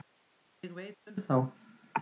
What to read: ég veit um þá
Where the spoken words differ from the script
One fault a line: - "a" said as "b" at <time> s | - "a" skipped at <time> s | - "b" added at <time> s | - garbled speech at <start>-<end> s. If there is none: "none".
none